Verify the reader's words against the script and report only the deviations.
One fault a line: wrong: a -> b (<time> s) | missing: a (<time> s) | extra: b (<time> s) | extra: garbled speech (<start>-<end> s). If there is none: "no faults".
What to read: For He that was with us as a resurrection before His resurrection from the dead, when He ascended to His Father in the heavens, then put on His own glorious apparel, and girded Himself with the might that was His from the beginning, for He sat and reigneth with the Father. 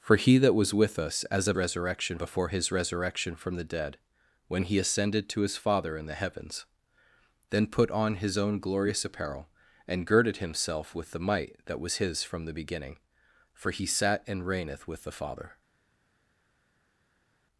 no faults